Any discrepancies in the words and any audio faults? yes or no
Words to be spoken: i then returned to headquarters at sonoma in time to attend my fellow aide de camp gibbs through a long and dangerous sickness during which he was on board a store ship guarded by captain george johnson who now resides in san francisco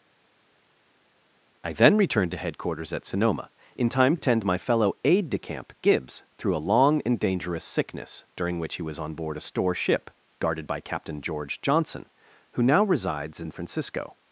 yes